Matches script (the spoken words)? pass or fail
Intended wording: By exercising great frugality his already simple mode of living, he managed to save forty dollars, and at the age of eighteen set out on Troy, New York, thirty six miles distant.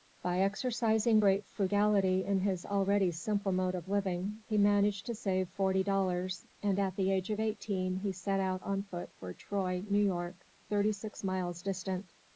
fail